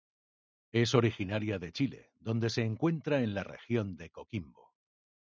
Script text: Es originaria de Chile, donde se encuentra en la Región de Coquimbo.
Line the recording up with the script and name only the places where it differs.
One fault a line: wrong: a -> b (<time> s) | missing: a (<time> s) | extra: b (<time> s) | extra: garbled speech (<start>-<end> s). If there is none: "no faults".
no faults